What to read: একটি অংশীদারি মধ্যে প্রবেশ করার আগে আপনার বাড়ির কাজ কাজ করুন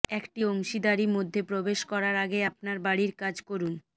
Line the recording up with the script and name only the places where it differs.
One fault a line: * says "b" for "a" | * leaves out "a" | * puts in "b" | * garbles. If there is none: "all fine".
* leaves out "কাজ"